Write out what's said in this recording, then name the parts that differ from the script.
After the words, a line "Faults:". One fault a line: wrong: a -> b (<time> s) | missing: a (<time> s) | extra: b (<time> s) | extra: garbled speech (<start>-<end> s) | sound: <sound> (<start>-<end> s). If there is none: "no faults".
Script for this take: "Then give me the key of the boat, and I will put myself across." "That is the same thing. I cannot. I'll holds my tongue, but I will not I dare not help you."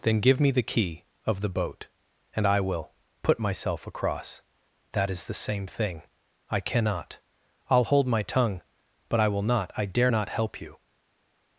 "Then give me the key of the boat, and I will put myself across." "That is the same thing. I cannot. I'll hold my tongue, but I will not I dare not help you."
Faults:
wrong: holds -> hold (7.8 s)